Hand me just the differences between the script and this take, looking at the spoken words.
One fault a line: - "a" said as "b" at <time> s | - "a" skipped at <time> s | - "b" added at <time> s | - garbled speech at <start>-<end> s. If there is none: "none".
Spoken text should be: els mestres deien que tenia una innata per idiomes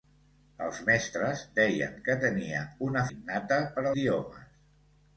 none